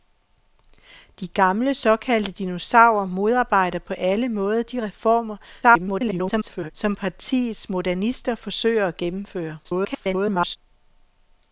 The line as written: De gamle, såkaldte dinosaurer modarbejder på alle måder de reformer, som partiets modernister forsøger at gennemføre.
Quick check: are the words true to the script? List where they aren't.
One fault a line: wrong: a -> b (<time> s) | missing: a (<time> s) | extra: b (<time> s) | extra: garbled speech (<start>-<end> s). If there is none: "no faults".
extra: garbled speech (5.6-6.7 s)
extra: garbled speech (9.6-10.6 s)